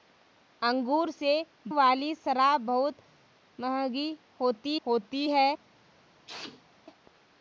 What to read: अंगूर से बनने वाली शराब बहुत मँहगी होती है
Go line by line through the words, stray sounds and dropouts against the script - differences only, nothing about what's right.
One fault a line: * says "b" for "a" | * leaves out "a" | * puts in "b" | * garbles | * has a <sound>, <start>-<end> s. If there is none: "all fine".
* leaves out "बनने"
* puts in "होती"
* has a sneeze, 6.3-6.7 s